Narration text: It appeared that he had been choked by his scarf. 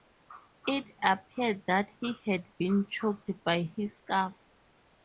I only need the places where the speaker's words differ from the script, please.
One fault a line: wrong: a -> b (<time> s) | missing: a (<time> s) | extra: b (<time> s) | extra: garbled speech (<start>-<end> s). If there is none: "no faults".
no faults